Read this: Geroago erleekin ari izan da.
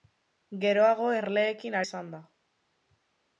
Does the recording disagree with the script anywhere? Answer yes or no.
yes